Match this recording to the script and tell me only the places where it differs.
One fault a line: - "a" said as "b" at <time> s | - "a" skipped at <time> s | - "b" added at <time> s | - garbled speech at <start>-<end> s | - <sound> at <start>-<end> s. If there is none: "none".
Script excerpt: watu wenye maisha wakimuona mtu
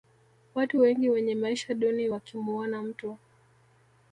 - "wengi" added at 0.8 s
- "duni" added at 1.7 s